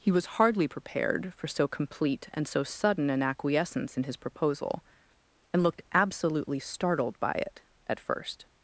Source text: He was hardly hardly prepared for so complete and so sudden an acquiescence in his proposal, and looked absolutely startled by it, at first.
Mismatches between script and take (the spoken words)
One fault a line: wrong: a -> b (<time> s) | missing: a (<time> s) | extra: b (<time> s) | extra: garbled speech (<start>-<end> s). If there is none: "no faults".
missing: hardly (0.7 s)